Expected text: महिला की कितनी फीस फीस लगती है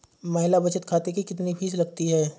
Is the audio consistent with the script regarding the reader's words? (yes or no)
no